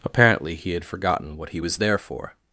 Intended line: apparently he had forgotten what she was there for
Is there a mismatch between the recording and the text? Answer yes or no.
yes